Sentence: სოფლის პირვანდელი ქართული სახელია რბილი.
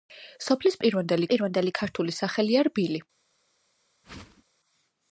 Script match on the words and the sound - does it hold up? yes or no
no